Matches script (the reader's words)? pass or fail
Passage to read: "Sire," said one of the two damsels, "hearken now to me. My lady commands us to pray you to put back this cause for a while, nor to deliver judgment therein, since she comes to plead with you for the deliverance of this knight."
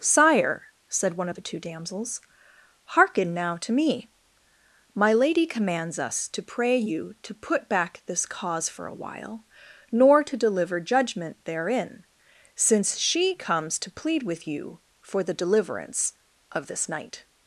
pass